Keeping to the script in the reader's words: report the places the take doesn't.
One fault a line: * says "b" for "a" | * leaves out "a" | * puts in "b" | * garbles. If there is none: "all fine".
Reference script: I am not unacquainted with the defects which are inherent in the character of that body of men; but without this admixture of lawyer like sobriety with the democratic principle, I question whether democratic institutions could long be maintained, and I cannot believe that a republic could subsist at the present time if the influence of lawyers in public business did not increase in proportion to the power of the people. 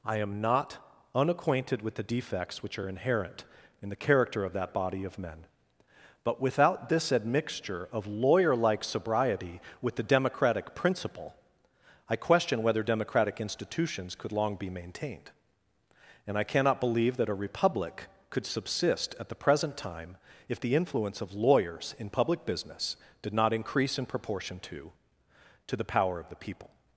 * puts in "to"